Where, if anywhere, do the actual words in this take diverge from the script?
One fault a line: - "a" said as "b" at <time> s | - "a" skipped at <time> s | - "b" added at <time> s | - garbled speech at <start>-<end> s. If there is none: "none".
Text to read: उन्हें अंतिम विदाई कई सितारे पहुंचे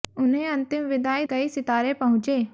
none